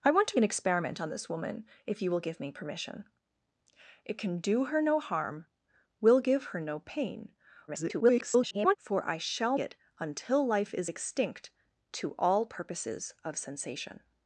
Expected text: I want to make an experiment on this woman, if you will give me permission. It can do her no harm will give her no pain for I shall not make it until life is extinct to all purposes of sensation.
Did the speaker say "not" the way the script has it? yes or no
no